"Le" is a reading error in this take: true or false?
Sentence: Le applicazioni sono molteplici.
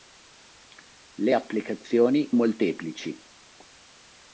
false